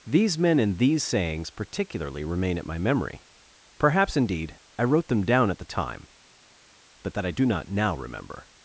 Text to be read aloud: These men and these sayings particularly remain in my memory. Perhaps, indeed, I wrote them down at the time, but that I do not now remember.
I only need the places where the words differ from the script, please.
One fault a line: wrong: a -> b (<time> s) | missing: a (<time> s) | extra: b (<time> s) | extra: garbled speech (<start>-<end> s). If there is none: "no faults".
wrong: in -> at (2.6 s)